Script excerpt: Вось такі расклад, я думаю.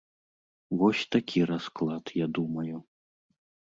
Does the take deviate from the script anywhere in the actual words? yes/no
no